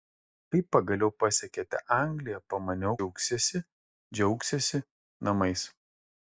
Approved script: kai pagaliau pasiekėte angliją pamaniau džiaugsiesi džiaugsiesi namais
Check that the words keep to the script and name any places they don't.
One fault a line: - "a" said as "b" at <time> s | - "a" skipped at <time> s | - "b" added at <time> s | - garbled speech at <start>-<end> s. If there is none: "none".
none